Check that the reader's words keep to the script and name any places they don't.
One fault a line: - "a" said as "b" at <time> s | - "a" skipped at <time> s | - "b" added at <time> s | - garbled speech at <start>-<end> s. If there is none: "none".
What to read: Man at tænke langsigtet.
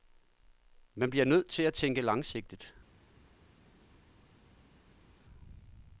- "bliver nødt til" added at 1.1 s